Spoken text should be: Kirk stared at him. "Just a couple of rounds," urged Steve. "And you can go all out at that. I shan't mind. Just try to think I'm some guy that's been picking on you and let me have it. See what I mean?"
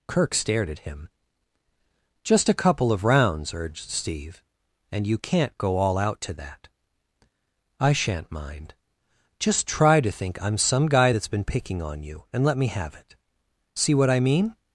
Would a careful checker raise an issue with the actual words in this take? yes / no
yes